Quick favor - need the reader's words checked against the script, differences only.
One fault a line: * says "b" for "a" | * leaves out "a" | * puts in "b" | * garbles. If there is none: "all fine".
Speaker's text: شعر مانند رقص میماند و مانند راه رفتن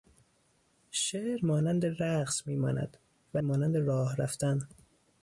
all fine